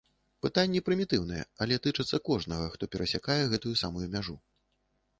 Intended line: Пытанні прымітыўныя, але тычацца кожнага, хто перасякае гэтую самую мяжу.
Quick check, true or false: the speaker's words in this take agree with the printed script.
true